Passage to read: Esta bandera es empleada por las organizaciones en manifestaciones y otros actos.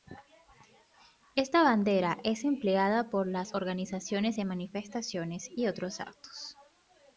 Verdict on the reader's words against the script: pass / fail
pass